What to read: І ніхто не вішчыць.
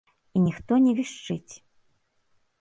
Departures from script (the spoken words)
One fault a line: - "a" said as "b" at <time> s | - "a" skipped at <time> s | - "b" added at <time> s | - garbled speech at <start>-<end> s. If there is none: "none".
none